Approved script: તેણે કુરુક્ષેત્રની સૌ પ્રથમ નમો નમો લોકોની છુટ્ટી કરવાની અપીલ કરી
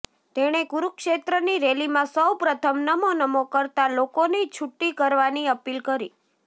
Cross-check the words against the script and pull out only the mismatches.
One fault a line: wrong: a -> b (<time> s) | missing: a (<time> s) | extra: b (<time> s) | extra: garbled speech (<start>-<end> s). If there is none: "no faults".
extra: રેલીમાં (1.6 s)
extra: કરતા (3.5 s)